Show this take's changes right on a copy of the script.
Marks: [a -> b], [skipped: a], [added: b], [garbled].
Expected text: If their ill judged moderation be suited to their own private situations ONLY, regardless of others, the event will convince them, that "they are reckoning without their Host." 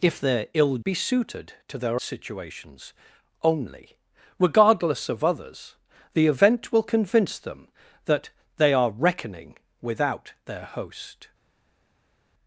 If their ill [skipped: judged moderation] be suited to their [skipped: own private] situations ONLY, regardless of others, the event will convince them, that "they are reckoning without their Host."